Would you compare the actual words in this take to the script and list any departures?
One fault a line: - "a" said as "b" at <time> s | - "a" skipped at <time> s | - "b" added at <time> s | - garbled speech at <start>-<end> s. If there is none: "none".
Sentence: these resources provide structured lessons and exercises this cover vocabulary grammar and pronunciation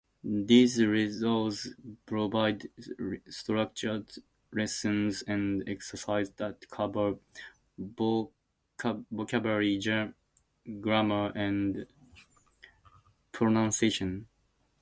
- "this" said as "that" at 6.4 s